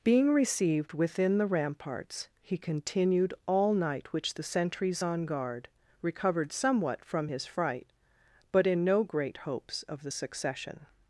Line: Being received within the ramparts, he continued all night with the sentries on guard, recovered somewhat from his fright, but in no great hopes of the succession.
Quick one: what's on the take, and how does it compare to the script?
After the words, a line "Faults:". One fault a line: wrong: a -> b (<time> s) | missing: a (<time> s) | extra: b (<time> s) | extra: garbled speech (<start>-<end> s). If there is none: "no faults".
Being received within the ramparts, he continued all night which the sentries on guard, recovered somewhat from his fright, but in no great hopes of the succession.
Faults:
wrong: with -> which (4.1 s)